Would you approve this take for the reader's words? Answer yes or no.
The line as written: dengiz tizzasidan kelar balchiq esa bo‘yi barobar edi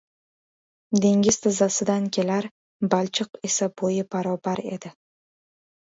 yes